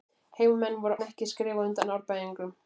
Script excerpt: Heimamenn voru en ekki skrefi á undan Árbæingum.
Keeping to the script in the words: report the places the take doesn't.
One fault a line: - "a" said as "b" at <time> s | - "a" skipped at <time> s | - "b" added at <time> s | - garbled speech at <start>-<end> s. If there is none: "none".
none